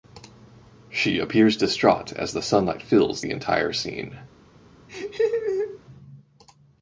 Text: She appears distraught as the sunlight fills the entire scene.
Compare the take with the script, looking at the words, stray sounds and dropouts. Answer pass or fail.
fail